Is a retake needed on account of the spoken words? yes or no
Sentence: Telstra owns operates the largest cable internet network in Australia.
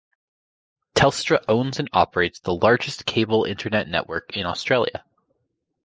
yes